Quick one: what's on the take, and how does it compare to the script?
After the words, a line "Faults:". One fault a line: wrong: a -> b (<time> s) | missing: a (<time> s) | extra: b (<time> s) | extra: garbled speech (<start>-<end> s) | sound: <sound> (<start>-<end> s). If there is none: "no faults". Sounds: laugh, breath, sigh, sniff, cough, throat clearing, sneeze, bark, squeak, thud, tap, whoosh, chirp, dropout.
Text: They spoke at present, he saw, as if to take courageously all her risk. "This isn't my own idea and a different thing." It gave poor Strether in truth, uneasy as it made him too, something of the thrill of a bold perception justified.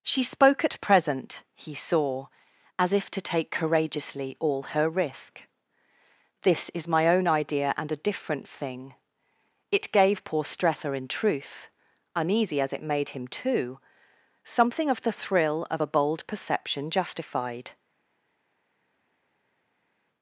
She spoke at present, he saw, as if to take courageously all her risk. "This is my own idea and a different thing." It gave poor Strether in truth, uneasy as it made him too, something of the thrill of a bold perception justified.
Faults:
wrong: They -> She (0.0 s)
wrong: isn't -> is (6.7 s)